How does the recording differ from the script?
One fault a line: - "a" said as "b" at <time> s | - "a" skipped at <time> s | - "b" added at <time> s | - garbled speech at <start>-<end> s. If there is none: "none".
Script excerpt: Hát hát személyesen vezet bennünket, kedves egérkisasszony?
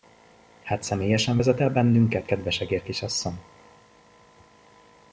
- "hát" skipped at 0.8 s
- "el" added at 1.6 s